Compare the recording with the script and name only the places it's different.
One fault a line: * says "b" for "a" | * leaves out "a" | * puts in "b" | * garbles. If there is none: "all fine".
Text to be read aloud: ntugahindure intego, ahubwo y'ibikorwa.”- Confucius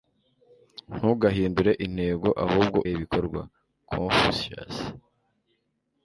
all fine